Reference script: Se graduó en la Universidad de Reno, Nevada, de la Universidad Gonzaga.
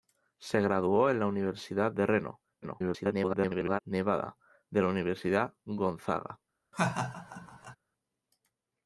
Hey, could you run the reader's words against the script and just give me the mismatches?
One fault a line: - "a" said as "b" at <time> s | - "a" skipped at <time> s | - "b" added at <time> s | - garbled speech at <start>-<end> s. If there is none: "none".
- garbled speech at 2.6-3.8 s